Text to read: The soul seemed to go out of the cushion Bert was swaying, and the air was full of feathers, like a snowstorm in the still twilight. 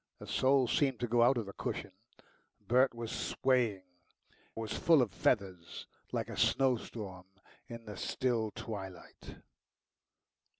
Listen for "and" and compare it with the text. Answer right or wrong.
wrong